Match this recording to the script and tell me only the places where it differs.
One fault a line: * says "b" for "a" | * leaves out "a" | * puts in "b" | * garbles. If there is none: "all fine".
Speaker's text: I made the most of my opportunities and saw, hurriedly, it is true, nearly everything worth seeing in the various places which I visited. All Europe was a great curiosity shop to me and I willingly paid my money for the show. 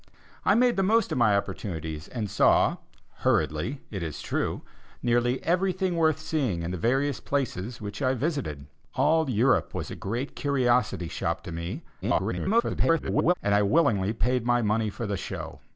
* garbles